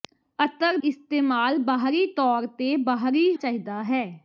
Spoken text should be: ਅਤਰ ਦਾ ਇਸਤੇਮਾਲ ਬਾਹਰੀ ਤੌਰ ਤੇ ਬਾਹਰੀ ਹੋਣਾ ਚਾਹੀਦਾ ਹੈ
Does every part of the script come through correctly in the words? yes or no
no